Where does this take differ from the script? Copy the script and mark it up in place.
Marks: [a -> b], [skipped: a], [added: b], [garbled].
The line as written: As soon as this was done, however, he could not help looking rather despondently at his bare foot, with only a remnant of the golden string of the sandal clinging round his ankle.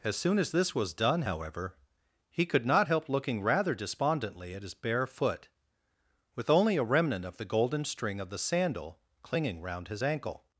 As soon as this was done, however, he could not help looking rather despondently at his bare foot, with only a remnant of the golden string of the sandal clinging round his ankle.